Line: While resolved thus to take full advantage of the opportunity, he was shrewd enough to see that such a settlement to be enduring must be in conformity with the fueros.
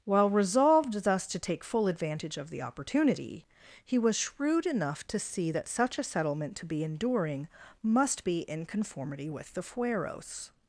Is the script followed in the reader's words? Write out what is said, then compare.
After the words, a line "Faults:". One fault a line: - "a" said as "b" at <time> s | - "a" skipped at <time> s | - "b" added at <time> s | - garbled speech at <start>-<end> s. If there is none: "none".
While resolved thus to take full advantage of the opportunity, he was shrewd enough to see that such a settlement to be enduring must be in conformity with the fueros.
Faults:
none